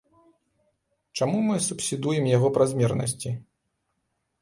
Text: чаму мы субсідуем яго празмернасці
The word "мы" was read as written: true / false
true